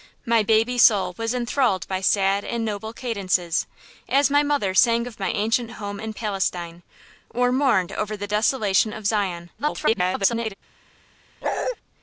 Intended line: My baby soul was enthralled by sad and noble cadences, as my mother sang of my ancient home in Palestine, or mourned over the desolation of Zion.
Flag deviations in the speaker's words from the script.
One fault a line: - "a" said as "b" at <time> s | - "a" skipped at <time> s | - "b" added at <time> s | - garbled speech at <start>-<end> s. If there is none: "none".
- garbled speech at 9.6-10.5 s